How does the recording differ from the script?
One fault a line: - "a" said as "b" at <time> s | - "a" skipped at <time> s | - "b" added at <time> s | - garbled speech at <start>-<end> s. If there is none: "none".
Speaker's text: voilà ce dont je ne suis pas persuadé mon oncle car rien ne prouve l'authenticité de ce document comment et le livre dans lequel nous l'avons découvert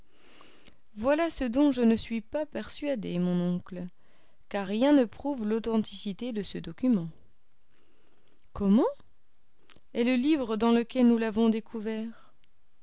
none